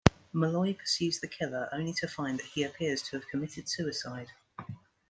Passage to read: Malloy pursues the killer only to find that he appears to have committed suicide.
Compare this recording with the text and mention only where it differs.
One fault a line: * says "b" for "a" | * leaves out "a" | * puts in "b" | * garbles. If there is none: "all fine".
all fine